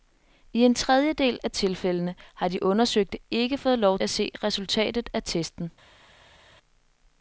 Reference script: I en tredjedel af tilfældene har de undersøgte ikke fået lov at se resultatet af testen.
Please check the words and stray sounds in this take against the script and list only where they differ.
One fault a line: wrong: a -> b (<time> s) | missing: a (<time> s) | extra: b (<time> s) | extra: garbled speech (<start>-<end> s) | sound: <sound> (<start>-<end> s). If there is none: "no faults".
no faults